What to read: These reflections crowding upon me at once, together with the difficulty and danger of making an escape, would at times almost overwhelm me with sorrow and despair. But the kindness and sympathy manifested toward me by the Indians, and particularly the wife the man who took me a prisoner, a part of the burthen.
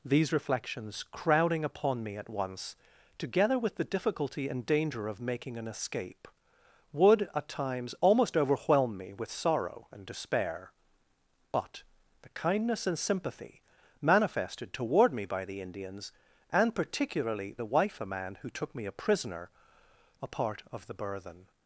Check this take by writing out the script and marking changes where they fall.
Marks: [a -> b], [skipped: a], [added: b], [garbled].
These reflections crowding upon me at once, together with the difficulty and danger of making an escape, would at times almost overwhelm me with sorrow and despair. But the kindness and sympathy manifested toward me by the Indians, and particularly the wife the man who took me a prisoner, a part of the burthen.